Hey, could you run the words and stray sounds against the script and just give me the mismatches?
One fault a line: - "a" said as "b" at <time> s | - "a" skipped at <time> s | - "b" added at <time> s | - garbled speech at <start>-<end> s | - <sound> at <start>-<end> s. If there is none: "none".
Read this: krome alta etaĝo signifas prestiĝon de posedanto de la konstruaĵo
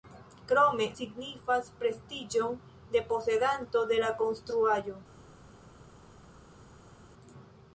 - "alta etaĝo" skipped at 0.9 s